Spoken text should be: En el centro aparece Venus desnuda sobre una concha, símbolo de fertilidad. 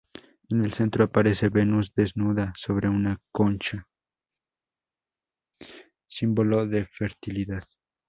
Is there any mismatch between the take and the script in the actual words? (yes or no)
no